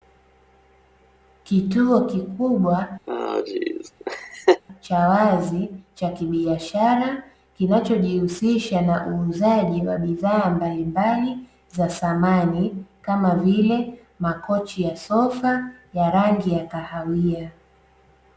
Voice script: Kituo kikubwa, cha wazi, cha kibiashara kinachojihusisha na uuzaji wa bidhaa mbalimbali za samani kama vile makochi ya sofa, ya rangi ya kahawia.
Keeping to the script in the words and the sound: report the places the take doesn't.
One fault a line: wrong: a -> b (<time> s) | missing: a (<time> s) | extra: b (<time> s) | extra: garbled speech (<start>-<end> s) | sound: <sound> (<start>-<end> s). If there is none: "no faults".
sound: laugh (3.1-4.6 s)